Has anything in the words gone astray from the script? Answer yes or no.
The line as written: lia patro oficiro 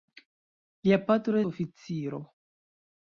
no